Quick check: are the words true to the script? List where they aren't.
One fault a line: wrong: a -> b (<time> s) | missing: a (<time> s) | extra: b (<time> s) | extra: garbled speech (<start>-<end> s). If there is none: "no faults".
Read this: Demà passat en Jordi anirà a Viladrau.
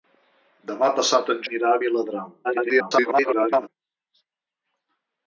missing: Jordi (1.4 s)
extra: garbled speech (2.4-3.7 s)